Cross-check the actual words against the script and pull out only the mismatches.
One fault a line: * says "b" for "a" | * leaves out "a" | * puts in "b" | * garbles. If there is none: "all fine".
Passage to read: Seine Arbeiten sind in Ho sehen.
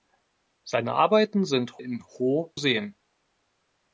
all fine